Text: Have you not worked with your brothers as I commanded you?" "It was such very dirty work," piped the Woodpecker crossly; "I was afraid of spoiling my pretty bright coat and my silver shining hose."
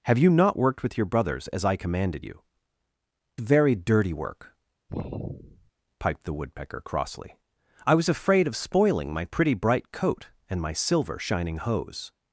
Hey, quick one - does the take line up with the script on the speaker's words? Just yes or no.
no